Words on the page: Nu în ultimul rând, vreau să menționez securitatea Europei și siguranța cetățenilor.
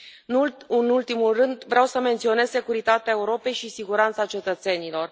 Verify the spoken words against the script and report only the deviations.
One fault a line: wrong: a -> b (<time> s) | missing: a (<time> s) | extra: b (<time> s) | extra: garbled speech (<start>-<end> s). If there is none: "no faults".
no faults